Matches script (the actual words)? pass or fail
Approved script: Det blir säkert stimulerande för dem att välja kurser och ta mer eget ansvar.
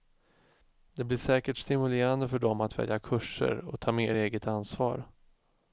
pass